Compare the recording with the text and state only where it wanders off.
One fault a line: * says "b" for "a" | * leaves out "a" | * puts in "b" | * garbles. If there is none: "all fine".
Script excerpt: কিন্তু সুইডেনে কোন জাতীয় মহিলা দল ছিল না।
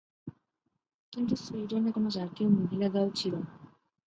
all fine